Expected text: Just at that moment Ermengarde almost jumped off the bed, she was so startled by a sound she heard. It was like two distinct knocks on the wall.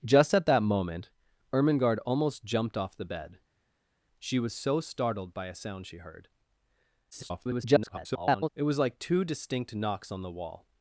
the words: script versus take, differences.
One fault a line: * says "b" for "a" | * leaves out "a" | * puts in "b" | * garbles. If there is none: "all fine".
* garbles